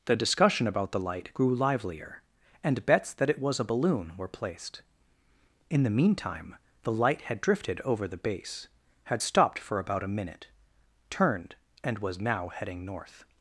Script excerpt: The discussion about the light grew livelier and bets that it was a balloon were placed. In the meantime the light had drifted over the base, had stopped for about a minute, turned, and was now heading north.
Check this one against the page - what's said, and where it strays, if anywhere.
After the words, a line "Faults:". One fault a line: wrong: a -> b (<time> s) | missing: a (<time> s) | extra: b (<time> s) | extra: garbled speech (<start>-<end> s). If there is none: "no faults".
The discussion about the light grew livelier and bets that it was a balloon were placed. In the meantime the light had drifted over the base, had stopped for about a minute, turned, and was now heading north.
Faults:
no faults